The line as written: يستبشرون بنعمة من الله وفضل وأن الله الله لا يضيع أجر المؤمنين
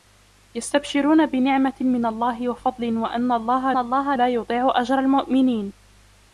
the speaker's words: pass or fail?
pass